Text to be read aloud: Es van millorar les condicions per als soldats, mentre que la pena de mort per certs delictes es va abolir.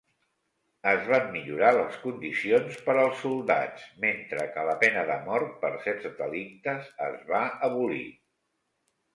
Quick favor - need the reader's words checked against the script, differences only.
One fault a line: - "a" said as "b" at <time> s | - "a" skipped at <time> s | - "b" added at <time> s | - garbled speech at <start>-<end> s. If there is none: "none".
none